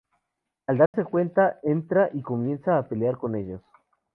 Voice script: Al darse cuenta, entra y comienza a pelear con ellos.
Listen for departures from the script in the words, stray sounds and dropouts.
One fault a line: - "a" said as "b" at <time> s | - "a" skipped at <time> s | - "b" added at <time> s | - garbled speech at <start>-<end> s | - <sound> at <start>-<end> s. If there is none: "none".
- dropout at 0.9-0.9 s